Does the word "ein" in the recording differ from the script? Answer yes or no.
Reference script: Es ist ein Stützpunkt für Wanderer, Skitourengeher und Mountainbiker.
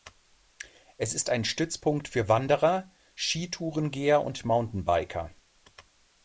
no